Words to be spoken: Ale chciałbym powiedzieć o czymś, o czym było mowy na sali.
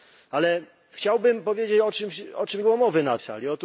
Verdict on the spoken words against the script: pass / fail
pass